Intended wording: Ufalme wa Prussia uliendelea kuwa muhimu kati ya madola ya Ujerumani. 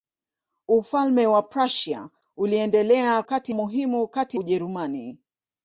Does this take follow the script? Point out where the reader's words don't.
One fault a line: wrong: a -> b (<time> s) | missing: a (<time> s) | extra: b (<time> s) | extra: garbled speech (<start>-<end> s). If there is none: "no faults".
wrong: kuwa -> kati (3.2 s)
missing: ya madola ya (4.4 s)